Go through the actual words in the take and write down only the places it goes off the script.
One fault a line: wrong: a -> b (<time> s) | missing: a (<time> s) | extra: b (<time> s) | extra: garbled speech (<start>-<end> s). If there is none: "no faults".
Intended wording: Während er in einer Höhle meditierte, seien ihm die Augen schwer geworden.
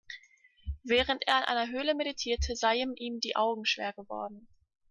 no faults